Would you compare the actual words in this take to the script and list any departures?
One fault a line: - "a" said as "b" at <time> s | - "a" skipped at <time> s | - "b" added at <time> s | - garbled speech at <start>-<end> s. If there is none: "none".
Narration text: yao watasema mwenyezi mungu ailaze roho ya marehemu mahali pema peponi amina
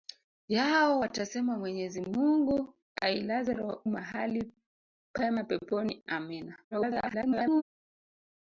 - "roho ya marehemu" skipped at 3.5 s
- garbled speech at 6.7-7.6 s